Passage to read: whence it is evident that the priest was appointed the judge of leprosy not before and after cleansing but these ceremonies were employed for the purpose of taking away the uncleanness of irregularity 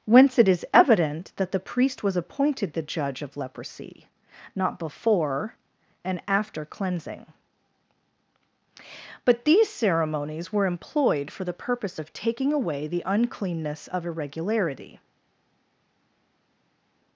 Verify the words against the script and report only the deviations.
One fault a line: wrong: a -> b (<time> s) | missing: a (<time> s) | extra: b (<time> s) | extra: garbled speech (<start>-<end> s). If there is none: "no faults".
no faults